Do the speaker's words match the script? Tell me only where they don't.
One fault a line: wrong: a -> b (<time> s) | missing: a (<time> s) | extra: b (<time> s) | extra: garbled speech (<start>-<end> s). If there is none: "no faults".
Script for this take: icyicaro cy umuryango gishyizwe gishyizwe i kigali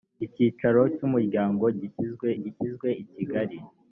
no faults